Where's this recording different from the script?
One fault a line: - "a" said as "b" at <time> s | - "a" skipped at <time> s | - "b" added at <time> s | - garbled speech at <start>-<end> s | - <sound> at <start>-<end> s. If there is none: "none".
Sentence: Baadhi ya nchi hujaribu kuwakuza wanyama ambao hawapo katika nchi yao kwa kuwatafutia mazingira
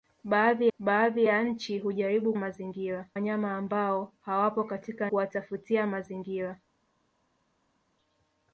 - "baadhi" added at 0.8 s
- "kuwakuza" said as "mazingira" at 2.3 s
- "nchi yao kwa" skipped at 5.1 s